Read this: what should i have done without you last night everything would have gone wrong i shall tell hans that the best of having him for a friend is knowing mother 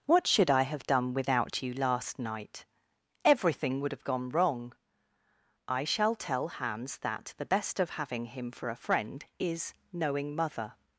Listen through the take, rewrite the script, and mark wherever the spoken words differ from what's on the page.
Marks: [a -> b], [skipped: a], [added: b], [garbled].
what should i have done without you last night everything would have gone wrong i shall tell hans that the best of having him for a friend is knowing mother